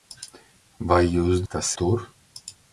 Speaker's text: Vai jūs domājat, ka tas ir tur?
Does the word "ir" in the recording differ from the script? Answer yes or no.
yes